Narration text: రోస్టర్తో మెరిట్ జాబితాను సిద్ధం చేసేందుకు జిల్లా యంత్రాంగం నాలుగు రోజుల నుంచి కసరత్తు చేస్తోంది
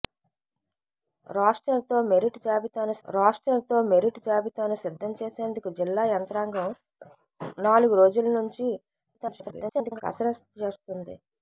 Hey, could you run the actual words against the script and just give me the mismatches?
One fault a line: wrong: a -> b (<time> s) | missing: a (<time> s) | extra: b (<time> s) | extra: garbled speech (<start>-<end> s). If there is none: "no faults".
extra: రోస్టర్తో మెరిట్ జాబితాను (3.1 s)
extra: garbled speech (9.1-10.0 s)